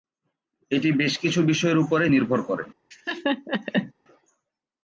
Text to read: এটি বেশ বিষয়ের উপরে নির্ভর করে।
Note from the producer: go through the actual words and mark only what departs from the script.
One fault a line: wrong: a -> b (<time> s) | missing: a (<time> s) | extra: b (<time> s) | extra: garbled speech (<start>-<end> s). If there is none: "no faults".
extra: কিছু (1.2 s)